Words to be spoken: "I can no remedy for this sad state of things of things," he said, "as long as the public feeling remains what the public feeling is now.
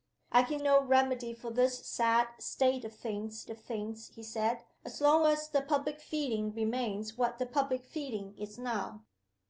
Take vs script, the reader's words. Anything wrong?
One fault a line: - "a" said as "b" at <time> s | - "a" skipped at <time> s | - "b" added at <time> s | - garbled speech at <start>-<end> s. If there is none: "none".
none